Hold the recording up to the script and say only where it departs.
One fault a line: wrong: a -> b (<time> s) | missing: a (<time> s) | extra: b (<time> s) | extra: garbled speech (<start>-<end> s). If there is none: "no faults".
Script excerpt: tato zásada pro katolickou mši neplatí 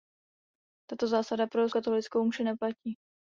no faults